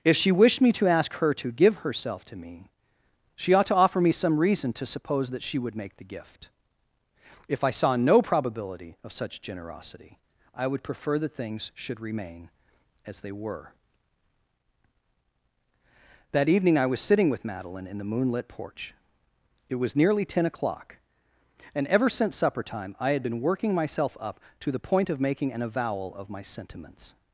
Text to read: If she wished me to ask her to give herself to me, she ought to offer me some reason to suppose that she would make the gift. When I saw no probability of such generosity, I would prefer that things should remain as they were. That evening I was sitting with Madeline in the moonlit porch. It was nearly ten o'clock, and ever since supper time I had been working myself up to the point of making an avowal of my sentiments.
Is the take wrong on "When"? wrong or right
wrong